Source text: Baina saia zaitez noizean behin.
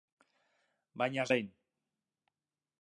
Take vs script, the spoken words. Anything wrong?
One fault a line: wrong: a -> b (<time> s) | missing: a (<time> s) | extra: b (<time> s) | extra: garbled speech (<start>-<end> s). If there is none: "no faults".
missing: saia zaitez noizean (1.2 s)